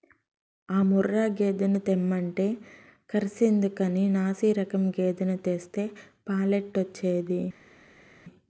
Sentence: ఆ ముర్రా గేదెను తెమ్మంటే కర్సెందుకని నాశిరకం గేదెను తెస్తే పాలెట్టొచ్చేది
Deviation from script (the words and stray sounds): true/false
false